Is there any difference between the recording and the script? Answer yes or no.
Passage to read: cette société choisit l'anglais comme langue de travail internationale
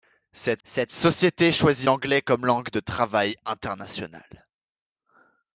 yes